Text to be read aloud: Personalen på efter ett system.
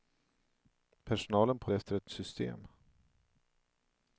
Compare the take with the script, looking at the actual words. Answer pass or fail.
pass